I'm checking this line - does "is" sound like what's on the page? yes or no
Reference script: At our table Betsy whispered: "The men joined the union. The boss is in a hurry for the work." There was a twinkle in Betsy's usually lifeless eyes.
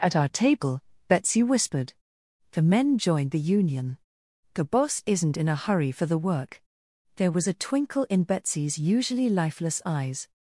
no